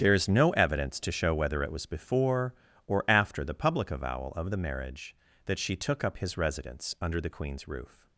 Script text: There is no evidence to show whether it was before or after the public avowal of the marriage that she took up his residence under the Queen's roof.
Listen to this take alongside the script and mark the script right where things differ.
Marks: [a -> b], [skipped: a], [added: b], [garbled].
There is no evidence to show whether it was before or after the public avowal of the marriage that she took up his residence under the Queen's roof.